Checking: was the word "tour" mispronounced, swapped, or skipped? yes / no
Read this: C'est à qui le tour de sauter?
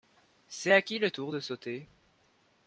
no